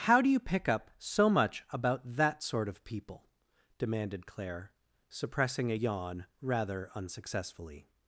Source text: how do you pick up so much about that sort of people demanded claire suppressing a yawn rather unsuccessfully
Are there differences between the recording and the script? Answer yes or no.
no